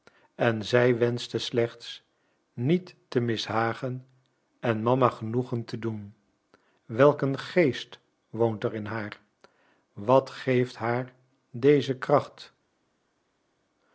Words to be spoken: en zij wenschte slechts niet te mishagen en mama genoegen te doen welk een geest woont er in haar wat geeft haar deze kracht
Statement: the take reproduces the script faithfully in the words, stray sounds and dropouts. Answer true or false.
true